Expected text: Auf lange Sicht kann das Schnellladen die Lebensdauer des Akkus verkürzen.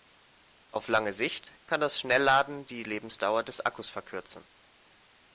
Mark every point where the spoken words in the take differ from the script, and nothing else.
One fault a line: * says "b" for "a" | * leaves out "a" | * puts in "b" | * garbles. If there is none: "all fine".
all fine